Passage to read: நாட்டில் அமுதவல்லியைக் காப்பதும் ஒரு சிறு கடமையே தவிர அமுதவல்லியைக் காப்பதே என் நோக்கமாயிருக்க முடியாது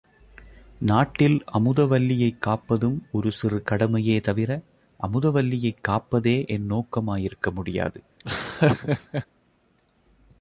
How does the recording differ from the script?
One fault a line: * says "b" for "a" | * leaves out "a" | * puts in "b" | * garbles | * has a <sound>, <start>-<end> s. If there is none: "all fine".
* has a laugh, 8.2-9.3 s